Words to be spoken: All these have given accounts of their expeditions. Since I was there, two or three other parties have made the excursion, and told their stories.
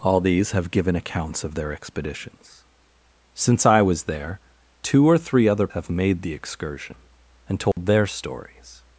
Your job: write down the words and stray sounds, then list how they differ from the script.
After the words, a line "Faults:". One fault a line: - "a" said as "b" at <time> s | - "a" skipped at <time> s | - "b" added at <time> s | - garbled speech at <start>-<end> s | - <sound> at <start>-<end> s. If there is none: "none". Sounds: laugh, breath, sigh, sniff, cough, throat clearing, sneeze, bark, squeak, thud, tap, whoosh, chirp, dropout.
All these have given accounts of their expeditions. Since I was there, two or three other have made the excursion, and told their stories.
Faults:
- "parties" skipped at 5.7 s
- dropout at 7.7-7.8 s